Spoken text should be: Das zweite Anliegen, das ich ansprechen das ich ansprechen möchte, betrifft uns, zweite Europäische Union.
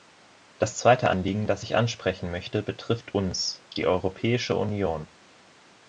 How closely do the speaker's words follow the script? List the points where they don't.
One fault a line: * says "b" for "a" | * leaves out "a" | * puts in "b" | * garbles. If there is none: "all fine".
* leaves out "das ich ansprechen"
* says "die" for "zweite"